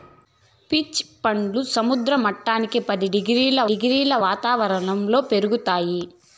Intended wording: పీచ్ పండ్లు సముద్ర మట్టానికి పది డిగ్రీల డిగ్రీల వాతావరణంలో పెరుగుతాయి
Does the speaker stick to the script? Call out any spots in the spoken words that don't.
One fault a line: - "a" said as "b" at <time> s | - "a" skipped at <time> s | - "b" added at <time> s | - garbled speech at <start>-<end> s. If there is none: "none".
none